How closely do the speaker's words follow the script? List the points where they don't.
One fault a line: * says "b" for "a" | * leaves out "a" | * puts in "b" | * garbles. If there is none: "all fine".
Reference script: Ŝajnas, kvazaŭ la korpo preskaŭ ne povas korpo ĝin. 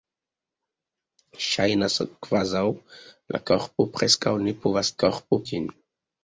all fine